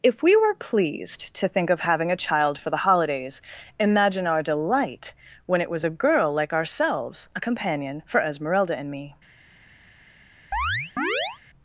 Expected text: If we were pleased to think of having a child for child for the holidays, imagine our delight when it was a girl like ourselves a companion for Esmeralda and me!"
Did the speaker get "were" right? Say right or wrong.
right